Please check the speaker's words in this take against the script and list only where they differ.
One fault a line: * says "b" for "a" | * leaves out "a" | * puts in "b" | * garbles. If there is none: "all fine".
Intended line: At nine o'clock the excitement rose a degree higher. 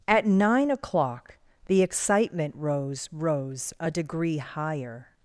* puts in "rose"